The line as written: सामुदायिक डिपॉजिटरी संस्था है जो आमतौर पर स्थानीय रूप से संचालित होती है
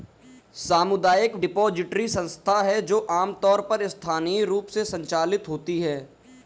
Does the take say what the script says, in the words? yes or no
yes